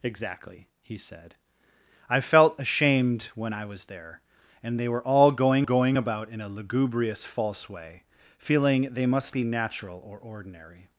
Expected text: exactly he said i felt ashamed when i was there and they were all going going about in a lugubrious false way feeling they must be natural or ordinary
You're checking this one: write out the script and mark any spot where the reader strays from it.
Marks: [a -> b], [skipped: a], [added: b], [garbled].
exactly he said i felt ashamed when i was there and they were all going going about in a lugubrious false way feeling they must be natural or ordinary